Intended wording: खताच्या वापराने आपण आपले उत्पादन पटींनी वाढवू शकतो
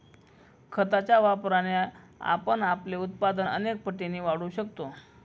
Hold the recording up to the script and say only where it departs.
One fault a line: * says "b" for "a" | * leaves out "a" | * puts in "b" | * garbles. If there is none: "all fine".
* puts in "अनेक"